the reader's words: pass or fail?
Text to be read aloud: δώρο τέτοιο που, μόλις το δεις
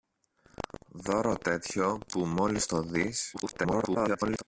fail